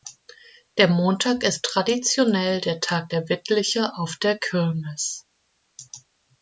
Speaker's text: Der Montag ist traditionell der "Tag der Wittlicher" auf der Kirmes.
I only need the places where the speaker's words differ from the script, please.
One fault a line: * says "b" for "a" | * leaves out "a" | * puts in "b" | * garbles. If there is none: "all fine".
all fine